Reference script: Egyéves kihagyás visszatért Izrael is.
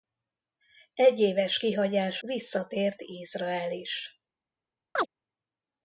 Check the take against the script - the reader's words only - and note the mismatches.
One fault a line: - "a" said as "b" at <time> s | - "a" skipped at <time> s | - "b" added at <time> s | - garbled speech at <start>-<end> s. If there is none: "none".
none